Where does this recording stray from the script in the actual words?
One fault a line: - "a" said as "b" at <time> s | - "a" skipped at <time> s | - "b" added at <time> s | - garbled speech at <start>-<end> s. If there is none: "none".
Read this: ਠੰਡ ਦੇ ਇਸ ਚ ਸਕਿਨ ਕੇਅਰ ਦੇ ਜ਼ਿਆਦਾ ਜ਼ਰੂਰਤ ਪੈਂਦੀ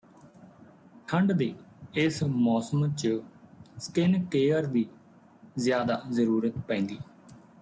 - "ਮੌਸਮ" added at 2.2 s
- "ਦੇ" said as "ਦੀ" at 4.7 s